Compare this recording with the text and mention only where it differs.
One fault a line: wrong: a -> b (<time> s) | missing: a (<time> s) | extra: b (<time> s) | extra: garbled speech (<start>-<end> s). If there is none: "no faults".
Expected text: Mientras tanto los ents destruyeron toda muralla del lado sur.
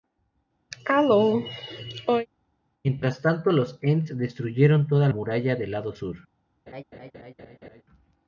no faults